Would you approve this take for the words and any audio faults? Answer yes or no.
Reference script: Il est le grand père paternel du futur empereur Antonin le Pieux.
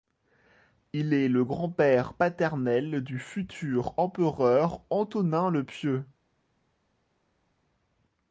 yes